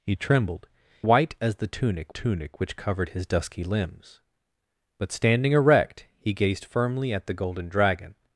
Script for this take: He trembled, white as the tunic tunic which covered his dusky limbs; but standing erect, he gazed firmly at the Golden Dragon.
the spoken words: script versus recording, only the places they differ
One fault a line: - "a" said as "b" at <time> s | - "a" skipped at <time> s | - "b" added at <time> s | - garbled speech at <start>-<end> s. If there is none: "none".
none